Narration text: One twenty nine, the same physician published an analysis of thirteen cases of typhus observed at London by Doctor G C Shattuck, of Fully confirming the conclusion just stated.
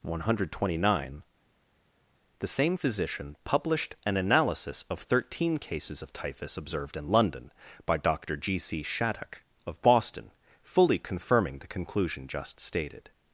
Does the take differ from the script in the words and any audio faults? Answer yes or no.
yes